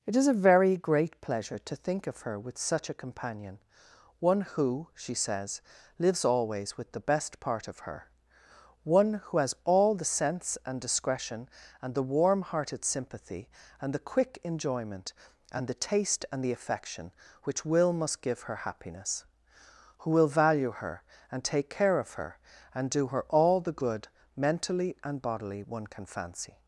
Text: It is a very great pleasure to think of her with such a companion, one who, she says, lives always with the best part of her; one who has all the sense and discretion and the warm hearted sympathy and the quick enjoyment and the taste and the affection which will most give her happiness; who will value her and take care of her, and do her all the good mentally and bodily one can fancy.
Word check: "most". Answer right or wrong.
wrong